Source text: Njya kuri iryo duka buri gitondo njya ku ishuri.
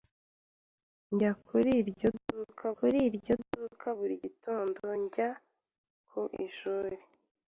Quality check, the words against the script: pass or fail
fail